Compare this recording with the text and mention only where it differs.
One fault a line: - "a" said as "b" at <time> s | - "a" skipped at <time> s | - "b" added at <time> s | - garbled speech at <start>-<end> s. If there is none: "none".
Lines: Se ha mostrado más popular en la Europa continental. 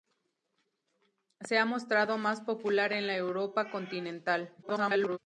- garbled speech at 4.6-5.2 s